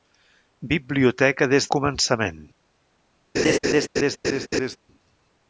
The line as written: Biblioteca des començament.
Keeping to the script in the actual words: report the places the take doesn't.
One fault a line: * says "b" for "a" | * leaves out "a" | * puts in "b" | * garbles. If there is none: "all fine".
all fine